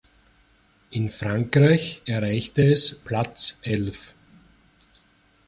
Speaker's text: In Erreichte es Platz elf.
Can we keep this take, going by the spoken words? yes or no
no